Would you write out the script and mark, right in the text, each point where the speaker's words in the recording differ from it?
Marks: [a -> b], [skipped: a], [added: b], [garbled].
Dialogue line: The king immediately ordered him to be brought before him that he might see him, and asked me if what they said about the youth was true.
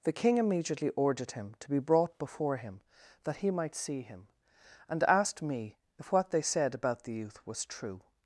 The king immediately ordered him to be brought before him that he might see him, and asked me if what they said about the youth was true.